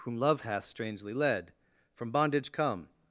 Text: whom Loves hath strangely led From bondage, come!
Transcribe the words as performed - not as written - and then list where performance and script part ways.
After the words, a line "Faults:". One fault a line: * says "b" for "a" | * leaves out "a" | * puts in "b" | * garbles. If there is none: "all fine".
whom Love hath strangely led From bondage, come!
Faults:
* says "Love" for "Loves"